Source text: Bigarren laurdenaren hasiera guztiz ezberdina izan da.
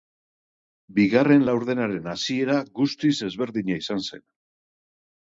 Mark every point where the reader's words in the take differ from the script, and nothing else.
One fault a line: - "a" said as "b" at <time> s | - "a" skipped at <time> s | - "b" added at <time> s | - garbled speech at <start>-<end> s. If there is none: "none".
- "da" said as "zen" at 4.1 s